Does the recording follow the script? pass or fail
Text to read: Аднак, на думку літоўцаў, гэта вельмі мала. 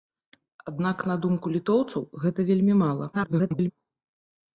fail